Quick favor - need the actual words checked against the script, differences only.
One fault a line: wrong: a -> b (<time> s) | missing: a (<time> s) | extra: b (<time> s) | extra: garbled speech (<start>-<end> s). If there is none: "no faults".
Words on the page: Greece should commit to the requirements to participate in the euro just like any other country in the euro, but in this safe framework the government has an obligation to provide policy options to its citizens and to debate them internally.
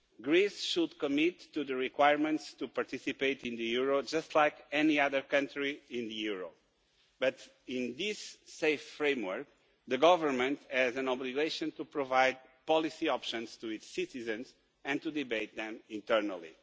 no faults